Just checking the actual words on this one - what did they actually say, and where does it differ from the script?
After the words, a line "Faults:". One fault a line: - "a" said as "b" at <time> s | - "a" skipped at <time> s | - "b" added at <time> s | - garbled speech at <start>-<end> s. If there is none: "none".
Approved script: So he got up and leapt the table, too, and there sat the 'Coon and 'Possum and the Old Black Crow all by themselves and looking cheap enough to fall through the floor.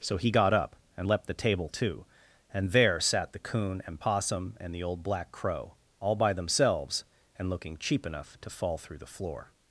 So he got up and leapt the table, too, and there sat the 'Coon and 'Possum and the Old Black Crow all by themselves and looking cheap enough to fall through the floor.
Faults:
none